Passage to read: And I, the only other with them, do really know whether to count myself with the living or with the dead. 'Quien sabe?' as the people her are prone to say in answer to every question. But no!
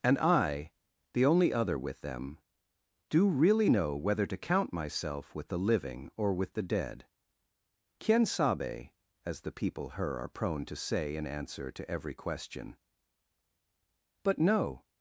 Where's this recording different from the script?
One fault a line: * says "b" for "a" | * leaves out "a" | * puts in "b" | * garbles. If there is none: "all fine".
all fine